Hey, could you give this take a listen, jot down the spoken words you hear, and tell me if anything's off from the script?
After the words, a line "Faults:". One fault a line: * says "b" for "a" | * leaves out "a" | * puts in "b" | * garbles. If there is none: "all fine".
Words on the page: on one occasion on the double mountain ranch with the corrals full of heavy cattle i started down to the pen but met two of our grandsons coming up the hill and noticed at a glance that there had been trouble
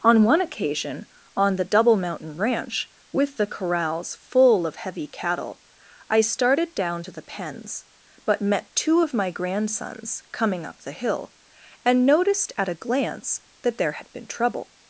on one occasion on the double mountain ranch with the corrals full of heavy cattle i started down to the pens but met two of my grandsons coming up the hill and noticed at a glance that there had been trouble
Faults:
* says "pens" for "pen"
* says "my" for "our"